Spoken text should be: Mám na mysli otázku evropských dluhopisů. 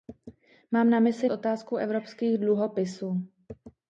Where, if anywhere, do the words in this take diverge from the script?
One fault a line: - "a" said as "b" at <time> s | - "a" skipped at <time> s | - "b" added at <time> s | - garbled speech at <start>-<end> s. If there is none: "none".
none